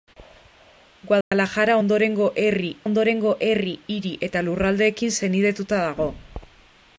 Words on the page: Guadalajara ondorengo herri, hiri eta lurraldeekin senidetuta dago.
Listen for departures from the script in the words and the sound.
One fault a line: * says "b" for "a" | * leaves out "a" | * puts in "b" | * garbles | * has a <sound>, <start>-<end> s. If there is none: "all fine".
* has a dropout, 1.2-1.3 s
* puts in "ondorengo herri"